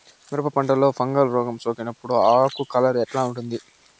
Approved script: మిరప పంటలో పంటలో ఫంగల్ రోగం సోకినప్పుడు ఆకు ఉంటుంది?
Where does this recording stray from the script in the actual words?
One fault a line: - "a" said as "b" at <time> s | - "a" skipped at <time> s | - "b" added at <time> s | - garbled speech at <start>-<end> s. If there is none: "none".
- "పంటలో" skipped at 0.9 s
- "కలర్ ఎట్లా" added at 2.7 s